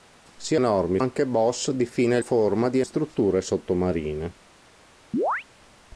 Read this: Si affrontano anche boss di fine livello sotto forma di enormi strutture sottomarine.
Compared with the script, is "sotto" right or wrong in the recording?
wrong